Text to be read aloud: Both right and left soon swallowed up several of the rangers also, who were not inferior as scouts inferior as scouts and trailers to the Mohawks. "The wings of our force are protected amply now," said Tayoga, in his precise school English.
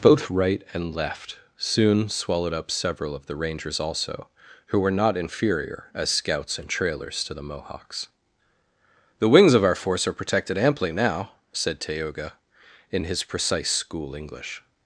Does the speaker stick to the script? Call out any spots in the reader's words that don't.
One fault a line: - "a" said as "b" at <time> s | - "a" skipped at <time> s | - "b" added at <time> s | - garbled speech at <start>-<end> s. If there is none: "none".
- "inferior as scouts" skipped at 6.6 s